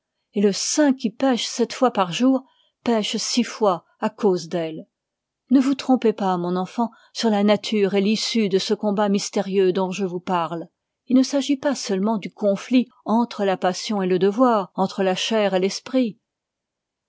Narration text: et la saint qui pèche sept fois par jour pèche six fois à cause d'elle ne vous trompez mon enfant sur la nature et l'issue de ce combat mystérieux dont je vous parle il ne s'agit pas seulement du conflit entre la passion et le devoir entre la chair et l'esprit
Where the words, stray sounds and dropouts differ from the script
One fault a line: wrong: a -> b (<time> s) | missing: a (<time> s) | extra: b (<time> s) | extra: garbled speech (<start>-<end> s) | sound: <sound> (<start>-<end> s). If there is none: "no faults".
wrong: la -> le (0.4 s)
extra: pas (6.1 s)